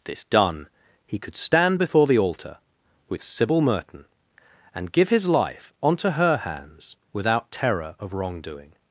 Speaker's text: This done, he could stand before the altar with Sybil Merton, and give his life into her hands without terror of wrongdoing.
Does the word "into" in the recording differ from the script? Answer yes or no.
yes